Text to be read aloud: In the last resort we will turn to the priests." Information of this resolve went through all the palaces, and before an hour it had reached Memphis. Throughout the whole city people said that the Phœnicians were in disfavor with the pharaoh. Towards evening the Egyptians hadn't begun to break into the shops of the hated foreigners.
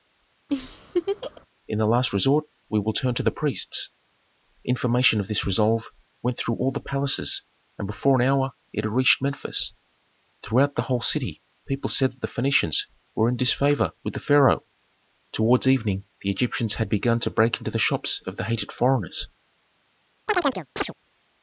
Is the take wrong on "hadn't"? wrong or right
wrong